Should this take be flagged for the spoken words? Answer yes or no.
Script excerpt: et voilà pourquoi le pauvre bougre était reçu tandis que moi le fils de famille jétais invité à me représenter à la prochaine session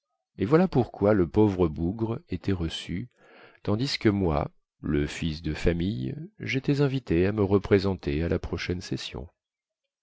no